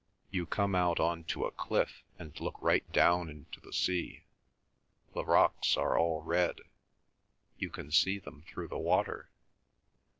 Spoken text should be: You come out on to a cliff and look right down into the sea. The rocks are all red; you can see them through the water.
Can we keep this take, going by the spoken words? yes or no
yes